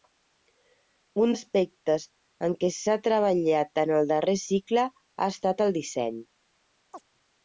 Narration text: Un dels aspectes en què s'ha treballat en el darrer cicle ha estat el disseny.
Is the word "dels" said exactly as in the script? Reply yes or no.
no